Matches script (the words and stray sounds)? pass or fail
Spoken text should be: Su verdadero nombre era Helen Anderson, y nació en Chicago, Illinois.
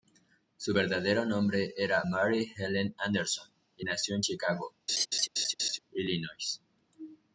fail